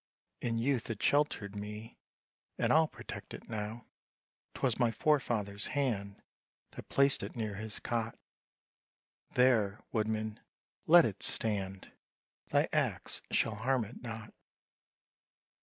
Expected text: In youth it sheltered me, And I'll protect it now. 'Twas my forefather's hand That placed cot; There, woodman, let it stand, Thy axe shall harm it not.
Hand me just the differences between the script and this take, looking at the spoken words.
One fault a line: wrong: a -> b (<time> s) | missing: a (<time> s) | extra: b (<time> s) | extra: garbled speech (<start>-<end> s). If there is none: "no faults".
extra: it near his (7.2 s)